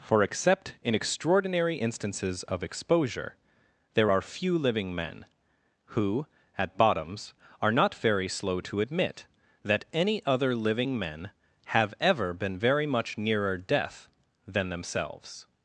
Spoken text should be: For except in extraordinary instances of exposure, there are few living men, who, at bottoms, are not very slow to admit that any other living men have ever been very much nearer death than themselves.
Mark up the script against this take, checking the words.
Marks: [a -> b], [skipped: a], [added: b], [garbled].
For except in extraordinary instances of exposure, there are few living men, who, at bottoms, are not very slow to admit that any other living men have ever been very much nearer death than themselves.